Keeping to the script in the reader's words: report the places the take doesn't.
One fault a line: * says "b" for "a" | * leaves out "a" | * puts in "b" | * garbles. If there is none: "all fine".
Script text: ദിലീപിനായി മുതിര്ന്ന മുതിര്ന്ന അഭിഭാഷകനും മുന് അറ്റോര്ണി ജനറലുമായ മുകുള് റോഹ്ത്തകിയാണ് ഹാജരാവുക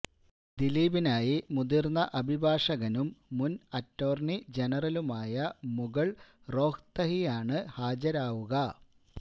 * leaves out "മുതിര്ന്ന"